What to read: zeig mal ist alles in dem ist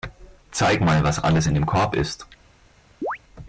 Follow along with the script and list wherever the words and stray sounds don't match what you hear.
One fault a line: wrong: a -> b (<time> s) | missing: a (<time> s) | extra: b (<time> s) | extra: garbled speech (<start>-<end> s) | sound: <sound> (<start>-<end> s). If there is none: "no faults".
wrong: ist -> was (1.0 s)
extra: korb (1.7 s)
sound: chirp (3.0-3.2 s)